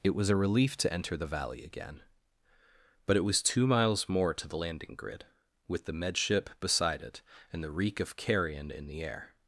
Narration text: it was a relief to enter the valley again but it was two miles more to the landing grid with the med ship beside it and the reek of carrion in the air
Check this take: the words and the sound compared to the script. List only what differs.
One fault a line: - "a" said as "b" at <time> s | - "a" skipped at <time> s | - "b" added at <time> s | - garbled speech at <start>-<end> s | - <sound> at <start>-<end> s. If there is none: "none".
none